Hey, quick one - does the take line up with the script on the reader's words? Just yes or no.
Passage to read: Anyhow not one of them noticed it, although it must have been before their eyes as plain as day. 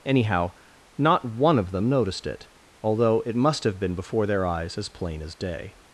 yes